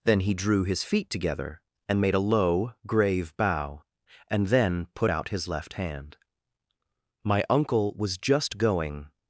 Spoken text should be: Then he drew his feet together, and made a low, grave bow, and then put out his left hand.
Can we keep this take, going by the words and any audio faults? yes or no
no